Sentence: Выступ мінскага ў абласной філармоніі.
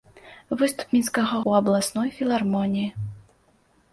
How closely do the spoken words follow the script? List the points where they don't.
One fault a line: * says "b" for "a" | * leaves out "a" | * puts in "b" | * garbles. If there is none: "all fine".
all fine